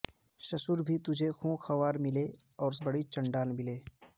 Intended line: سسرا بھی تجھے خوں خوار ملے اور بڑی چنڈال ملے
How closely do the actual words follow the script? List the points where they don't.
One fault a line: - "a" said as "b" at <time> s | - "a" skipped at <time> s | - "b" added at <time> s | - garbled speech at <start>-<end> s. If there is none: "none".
none